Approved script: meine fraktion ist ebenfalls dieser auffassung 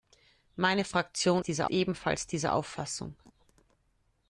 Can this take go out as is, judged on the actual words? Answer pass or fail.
fail